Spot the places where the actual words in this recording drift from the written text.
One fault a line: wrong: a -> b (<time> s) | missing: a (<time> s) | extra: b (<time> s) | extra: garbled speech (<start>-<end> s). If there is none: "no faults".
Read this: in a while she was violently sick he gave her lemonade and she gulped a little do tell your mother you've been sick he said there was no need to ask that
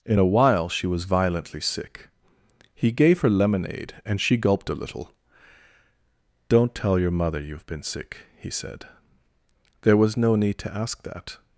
wrong: do -> don't (6.5 s)